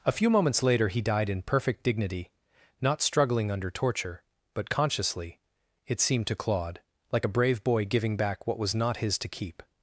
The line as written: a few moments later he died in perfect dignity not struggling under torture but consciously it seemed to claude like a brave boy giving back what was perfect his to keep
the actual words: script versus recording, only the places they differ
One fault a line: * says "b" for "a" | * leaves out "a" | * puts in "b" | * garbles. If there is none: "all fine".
* says "not" for "perfect"